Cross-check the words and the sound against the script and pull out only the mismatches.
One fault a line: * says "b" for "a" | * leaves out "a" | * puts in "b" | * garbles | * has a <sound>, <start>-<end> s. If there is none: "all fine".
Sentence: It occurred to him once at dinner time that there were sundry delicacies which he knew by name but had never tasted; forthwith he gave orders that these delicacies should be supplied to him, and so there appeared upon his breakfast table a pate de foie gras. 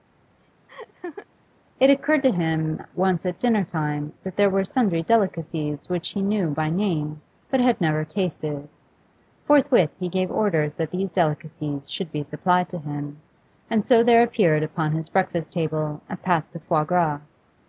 * has a laugh, 0.7-1.3 s